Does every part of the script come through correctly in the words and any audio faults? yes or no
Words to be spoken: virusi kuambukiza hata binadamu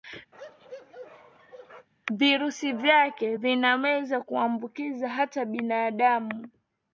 no